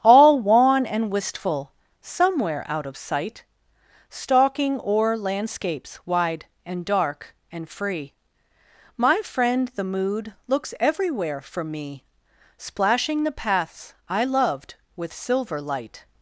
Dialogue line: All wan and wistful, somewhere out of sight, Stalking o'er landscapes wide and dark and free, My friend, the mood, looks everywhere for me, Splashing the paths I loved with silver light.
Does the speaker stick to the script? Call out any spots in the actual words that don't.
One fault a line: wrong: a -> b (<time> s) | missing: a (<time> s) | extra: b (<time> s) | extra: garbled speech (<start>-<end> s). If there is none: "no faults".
no faults